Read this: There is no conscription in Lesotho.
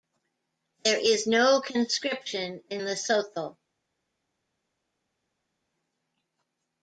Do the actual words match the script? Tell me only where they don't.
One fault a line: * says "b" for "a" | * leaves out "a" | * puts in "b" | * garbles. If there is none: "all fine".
all fine